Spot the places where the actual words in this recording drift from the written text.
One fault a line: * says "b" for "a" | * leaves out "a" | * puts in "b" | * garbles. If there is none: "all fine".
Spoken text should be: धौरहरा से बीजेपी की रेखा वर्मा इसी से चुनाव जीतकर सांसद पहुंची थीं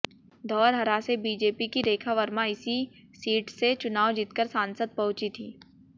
* puts in "सीट"